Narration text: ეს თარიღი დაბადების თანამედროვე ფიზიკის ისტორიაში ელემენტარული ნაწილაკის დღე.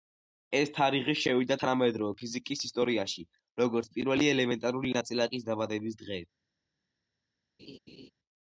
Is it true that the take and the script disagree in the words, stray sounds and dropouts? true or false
true